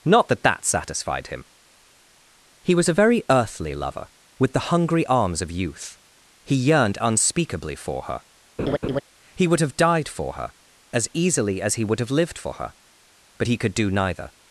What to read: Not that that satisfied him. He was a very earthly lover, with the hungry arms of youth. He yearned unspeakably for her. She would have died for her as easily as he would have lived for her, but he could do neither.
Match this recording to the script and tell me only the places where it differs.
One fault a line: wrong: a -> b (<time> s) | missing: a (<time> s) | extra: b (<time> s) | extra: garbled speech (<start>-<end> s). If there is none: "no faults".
wrong: She -> He (9.4 s)